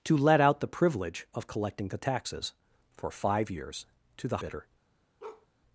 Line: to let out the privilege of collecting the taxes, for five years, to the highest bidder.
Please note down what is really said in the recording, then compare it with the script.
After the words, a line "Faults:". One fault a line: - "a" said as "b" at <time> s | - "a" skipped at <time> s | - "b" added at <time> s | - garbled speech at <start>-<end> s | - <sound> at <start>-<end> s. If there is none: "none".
to let out the privilege of collecting the taxes, for five years, to the bidder.
Faults:
- "highest" skipped at 4.4 s
- bark at 5.2-5.5 s